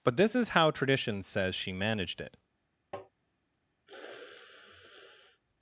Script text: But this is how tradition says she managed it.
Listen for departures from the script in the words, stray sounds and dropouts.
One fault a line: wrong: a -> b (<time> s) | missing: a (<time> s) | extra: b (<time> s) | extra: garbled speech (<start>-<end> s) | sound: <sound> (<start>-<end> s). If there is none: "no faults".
sound: tap (2.9-3.1 s)
sound: sniff (3.9-5.4 s)